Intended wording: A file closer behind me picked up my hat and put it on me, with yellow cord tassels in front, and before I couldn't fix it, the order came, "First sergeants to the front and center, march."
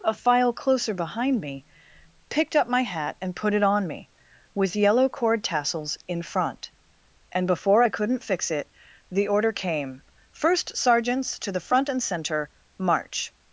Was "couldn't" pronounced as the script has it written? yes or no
yes